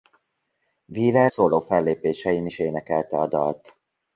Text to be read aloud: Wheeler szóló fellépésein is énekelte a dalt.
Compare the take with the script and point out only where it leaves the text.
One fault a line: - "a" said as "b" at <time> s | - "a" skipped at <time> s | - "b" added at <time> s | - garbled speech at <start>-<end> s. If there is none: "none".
none